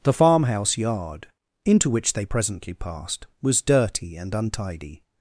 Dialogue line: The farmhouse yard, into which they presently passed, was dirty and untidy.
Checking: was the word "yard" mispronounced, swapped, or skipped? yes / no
no